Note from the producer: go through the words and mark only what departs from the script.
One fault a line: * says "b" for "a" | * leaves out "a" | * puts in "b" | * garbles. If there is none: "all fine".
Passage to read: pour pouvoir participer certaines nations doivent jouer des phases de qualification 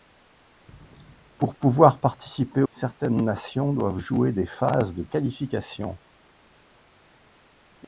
all fine